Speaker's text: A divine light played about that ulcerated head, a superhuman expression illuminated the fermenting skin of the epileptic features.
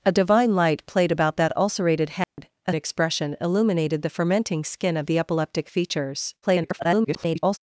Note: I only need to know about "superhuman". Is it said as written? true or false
false